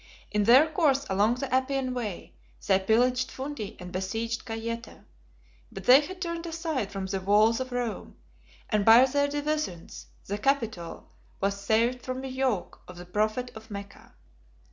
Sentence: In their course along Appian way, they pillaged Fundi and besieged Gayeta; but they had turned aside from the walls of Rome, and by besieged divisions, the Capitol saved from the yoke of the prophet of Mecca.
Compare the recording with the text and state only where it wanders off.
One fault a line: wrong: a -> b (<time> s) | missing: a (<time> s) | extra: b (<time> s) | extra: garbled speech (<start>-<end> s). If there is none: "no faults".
extra: the (1.4 s)
wrong: besieged -> their (9.0 s)
extra: was (11.4 s)